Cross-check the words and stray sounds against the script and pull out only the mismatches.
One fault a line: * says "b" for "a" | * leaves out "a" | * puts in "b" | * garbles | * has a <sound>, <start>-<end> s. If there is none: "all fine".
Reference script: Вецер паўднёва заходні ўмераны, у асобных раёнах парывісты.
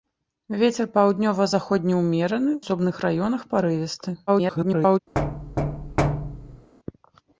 * leaves out "у"
* garbles
* has a thud, 5.1-6.7 s